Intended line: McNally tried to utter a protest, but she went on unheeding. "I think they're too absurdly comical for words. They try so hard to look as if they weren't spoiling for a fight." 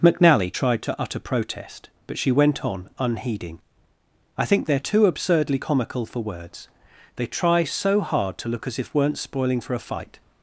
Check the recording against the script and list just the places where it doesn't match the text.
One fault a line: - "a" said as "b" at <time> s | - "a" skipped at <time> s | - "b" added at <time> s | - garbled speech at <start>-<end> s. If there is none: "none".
- "a" skipped at 1.2 s
- "they" skipped at 8.9 s